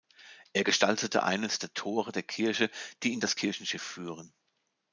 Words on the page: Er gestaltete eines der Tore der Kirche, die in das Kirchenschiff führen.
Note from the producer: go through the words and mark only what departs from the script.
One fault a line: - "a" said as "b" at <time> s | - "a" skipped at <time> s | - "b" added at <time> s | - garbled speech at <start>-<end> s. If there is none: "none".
none